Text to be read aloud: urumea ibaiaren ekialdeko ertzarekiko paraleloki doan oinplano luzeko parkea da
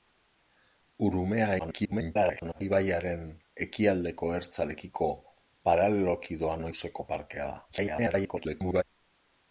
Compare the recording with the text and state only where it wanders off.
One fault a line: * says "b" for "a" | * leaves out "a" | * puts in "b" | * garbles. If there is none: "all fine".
* garbles
* leaves out "oinplano"
* garbles